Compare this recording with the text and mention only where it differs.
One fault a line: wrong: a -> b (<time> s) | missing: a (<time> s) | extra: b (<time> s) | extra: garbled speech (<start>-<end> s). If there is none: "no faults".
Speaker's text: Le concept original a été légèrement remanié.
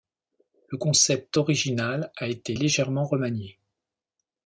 no faults